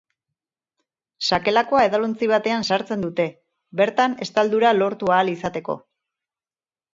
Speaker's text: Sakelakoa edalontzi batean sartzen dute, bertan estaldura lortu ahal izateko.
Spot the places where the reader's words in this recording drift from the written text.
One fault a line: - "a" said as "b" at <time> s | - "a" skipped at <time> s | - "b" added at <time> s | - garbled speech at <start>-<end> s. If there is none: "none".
none